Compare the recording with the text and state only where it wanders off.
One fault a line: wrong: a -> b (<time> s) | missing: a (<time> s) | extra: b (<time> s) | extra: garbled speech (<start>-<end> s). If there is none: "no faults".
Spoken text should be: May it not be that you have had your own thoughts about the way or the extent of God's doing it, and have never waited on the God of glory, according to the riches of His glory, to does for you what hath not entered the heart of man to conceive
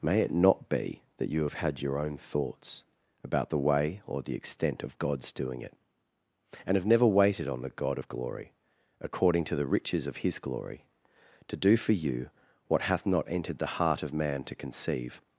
wrong: does -> do (11.6 s)